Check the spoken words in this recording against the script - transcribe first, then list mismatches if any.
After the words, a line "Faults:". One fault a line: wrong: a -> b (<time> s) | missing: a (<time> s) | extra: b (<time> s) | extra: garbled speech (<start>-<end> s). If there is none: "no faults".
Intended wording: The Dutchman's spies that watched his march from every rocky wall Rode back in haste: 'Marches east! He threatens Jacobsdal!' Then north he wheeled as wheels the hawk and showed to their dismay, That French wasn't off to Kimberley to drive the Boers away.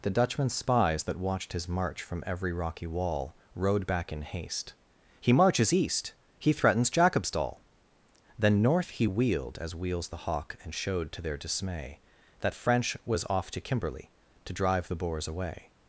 The Dutchman's spies that watched his march from every rocky wall Rode back in haste: 'He marches east! He threatens Jacobsdal!' Then north he wheeled as wheels the hawk and showed to their dismay, That French was off to Kimberley to drive the Boers away.
Faults:
extra: He (5.2 s)
wrong: wasn't -> was (13.0 s)